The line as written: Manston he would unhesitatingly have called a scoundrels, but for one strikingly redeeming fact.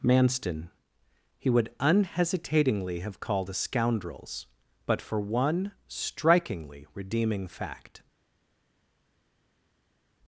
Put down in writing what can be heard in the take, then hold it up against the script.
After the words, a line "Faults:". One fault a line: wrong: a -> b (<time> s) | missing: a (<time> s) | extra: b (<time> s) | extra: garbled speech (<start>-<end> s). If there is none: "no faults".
Manston he would unhesitatingly have called a scoundrels, but for one strikingly redeeming fact.
Faults:
no faults